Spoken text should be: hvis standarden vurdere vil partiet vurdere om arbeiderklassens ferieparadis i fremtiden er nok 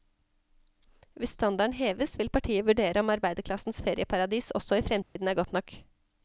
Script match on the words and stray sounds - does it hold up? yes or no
no